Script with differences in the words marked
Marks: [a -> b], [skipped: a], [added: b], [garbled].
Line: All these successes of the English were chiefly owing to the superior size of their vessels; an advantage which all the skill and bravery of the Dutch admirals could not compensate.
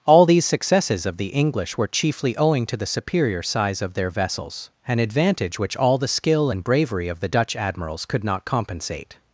All these successes of the English were chiefly owing to the superior size of their vessels; an advantage which all the skill and bravery of the Dutch admirals could not compensate.